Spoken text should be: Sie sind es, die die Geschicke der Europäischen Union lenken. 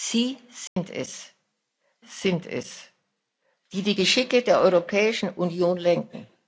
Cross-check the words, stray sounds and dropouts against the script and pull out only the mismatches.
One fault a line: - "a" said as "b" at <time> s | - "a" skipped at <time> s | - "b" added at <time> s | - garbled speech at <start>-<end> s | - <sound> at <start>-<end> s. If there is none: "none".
- dropout at 0.7-0.8 s
- "sind es" added at 2.1 s